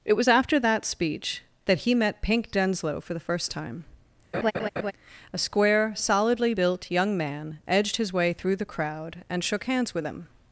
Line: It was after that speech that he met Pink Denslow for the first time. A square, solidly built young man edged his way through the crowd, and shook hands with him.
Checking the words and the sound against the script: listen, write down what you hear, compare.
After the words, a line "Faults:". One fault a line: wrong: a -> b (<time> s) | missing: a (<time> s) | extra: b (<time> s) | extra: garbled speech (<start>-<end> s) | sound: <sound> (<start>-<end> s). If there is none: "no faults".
It was after that speech that he met Pink Denslow for the first time. A square, solidly built young man edged his way through the crowd, and shook hands with him.
Faults:
sound: laugh (4.3-4.9 s)